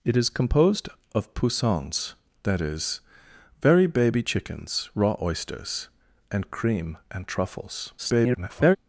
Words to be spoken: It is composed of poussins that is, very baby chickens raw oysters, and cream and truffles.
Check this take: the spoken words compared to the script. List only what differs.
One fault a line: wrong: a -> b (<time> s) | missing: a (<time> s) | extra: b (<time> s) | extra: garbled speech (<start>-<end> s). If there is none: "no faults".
extra: garbled speech (8.0-8.8 s)